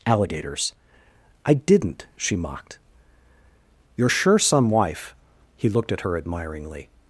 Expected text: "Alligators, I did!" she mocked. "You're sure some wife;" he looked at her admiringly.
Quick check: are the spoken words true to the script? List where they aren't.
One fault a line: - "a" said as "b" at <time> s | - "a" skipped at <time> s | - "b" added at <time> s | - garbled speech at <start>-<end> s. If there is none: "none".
- "did" said as "didn't" at 1.5 s